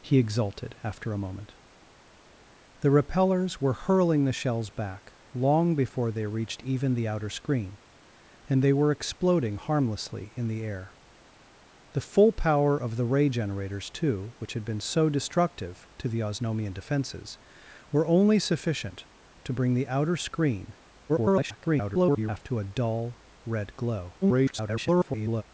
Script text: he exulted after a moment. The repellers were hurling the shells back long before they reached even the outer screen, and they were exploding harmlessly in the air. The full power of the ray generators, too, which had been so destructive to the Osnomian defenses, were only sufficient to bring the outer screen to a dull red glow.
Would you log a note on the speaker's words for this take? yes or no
yes